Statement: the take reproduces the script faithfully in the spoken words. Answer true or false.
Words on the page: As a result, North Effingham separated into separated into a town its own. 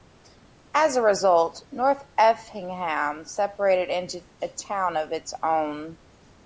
false